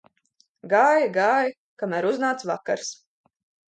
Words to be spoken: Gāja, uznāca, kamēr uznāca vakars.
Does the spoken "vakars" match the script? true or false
true